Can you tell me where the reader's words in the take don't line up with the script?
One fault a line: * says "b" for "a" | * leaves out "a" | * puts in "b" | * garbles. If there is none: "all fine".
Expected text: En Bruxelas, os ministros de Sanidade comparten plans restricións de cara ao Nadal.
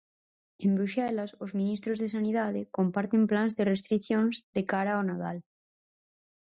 * puts in "de"